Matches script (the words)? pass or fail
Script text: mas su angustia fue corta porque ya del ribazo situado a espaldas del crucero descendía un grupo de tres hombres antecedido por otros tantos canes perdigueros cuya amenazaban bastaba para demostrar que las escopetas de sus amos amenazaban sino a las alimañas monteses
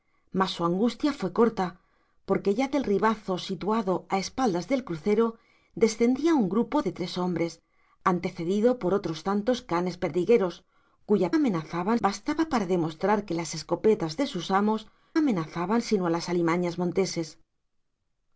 pass